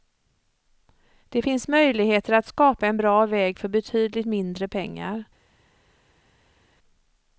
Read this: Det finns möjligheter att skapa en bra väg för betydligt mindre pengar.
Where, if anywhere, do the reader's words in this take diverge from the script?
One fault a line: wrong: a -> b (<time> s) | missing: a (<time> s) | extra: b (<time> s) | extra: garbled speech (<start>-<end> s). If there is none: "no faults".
no faults